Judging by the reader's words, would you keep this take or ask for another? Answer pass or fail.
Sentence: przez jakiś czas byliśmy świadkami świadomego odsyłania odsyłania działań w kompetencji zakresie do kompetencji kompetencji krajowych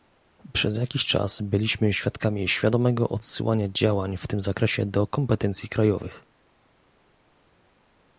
fail